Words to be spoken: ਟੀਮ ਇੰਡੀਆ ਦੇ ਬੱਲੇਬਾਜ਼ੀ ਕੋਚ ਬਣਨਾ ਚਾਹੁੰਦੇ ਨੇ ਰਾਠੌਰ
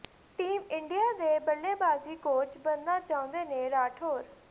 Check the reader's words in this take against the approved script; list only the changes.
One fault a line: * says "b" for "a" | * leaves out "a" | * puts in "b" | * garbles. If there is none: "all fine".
all fine